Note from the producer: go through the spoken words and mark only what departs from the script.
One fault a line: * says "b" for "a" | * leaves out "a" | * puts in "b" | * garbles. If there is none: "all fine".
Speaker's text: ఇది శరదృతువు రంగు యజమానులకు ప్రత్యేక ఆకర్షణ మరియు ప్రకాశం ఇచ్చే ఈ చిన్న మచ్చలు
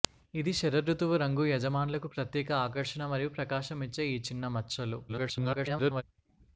* garbles